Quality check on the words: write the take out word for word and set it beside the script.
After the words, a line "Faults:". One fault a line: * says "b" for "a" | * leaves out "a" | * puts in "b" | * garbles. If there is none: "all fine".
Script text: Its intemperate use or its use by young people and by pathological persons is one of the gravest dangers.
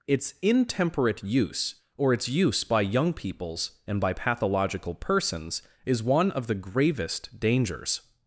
Its intemperate use or its use by young peoples and by pathological persons is one of the gravest dangers.
Faults:
* says "peoples" for "people"